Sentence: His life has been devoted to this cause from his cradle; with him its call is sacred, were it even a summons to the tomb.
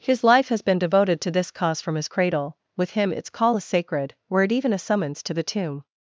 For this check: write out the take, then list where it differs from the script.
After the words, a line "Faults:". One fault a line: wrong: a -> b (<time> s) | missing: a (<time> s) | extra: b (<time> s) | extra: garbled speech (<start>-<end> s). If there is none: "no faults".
His life has been devoted to this cause from his cradle; with him its call is sacred, were it even a summons to the tomb.
Faults:
no faults